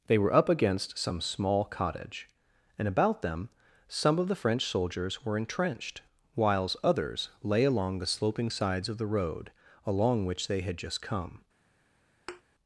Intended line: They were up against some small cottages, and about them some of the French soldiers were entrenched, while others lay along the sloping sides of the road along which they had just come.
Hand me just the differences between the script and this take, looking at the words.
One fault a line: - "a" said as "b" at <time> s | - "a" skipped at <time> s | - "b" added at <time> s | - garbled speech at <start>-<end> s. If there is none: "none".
- "cottages" said as "cottage" at 1.6 s
- "while" said as "whiles" at 6.3 s